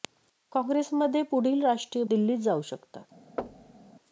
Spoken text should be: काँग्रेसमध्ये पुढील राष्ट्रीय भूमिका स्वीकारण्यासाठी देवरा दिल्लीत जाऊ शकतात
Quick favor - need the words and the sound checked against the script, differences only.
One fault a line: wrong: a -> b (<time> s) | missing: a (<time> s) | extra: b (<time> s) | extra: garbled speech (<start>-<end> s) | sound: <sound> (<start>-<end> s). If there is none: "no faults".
missing: भूमिका स्वीकारण्यासाठी देवरा (2.0 s)
sound: thud (3.4-3.9 s)